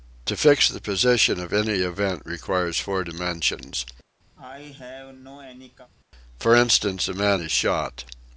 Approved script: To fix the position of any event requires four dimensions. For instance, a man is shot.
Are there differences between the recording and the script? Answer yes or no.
no